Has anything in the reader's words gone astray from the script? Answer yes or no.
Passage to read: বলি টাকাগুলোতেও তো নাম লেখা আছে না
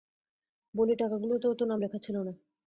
yes